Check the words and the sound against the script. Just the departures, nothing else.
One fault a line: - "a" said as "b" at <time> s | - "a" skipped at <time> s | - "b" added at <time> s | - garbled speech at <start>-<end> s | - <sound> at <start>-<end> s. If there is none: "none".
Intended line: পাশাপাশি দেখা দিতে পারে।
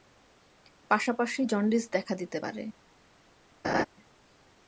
- "জন্ডিস" added at 1.4 s
- laugh at 3.6-3.9 s